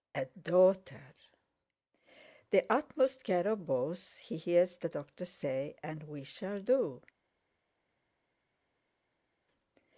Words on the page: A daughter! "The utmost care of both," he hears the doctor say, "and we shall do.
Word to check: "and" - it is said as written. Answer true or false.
true